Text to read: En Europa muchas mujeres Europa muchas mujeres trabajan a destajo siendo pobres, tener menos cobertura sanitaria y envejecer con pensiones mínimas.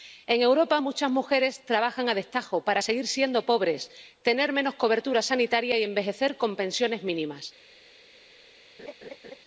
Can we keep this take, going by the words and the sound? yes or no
no